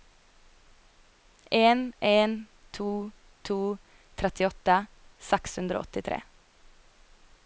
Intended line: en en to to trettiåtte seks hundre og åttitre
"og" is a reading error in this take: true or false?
false